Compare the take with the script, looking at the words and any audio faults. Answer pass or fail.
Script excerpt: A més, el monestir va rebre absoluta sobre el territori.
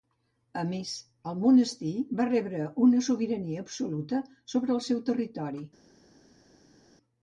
fail